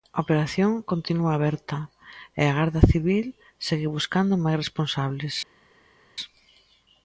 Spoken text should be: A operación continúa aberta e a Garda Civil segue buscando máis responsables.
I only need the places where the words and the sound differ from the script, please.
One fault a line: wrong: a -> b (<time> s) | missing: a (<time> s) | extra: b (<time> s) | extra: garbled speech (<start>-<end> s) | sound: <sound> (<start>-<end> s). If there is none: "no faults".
no faults